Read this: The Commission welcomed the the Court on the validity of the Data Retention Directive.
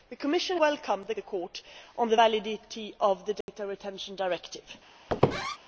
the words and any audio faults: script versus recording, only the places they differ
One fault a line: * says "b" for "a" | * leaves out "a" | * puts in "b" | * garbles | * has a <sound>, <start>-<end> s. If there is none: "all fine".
* has a dropout, 3.4-3.5 s
* has a squeak, 5.1-5.6 s